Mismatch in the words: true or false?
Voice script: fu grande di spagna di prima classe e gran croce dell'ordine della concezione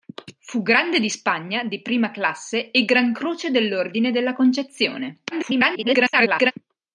true